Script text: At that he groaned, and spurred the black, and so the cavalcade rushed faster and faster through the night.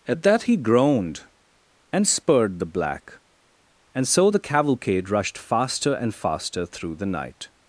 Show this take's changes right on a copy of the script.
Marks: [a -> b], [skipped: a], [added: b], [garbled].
At that he groaned, and spurred the black, and so the cavalcade rushed faster and faster through the night.